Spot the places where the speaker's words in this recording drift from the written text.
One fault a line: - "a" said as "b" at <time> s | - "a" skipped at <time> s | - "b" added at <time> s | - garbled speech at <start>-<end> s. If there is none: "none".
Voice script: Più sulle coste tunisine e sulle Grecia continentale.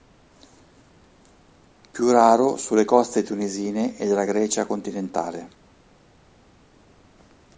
- "raro" added at 2.1 s
- "sulle" said as "della" at 4.1 s